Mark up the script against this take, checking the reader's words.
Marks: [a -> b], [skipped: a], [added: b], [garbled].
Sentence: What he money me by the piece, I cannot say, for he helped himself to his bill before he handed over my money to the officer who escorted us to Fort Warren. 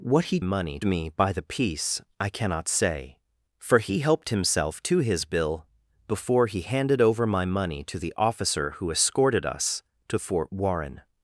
What he money me by the piece, I cannot say, for he helped himself to his bill before he handed over my money to the officer who escorted us to Fort Warren.